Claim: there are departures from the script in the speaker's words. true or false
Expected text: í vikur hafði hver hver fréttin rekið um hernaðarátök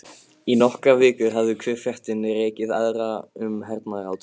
true